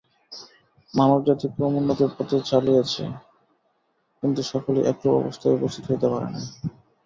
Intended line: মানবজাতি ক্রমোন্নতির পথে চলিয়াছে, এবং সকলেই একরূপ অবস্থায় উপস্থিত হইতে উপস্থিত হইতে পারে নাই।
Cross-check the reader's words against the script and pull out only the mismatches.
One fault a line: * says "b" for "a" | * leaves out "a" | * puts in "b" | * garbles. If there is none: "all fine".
* says "কিন্তু" for "এবং"
* leaves out "উপস্থিত হইতে"